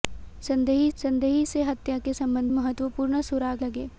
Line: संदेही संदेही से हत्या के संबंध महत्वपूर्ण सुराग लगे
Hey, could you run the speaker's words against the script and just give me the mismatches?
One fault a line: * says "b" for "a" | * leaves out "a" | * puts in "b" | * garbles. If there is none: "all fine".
all fine